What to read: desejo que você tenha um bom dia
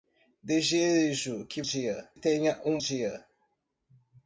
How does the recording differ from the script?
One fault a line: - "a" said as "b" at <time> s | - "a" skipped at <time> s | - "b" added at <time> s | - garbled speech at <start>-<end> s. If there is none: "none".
- "você" said as "dia" at 1.6 s
- "bom" skipped at 2.8 s